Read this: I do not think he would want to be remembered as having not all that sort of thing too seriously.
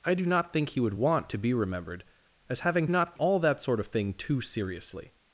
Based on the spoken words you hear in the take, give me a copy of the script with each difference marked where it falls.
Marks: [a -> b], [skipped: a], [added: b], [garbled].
I do not think he would want to be remembered as having not all that sort of thing too seriously.